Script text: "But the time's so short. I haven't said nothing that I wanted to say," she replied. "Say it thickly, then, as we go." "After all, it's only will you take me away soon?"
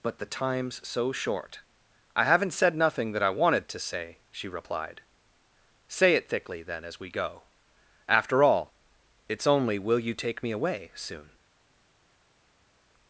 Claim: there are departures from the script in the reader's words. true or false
false